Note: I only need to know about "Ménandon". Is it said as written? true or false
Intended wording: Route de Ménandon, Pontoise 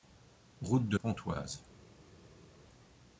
false